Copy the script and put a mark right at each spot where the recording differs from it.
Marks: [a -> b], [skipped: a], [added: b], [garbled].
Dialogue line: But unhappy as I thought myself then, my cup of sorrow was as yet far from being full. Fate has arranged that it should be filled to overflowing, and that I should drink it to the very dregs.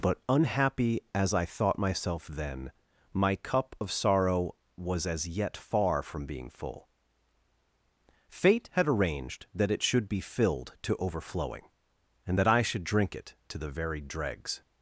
But unhappy as I thought myself then, my cup of sorrow was as yet far from being full. Fate [has -> had] arranged that it should be filled to overflowing, and that I should drink it to the very dregs.